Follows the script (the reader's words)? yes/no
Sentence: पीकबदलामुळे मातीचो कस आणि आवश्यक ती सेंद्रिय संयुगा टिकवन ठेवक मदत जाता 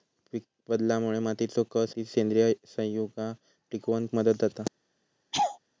no